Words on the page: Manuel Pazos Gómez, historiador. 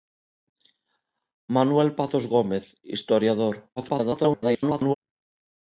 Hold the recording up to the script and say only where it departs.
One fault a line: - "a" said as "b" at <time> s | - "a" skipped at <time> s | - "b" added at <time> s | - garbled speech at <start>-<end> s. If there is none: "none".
- garbled speech at 3.8-4.9 s